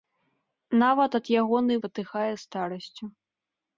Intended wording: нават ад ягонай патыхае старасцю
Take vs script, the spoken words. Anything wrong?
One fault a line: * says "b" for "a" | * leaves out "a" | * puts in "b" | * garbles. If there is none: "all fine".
all fine